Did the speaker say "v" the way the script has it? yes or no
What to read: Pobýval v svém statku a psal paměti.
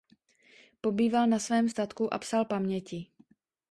no